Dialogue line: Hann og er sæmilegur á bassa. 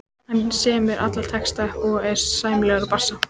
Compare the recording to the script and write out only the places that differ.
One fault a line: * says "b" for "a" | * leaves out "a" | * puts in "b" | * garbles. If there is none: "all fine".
* puts in "semur alla texta"